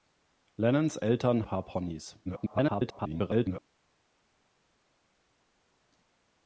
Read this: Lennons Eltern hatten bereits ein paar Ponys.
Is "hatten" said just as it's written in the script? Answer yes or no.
no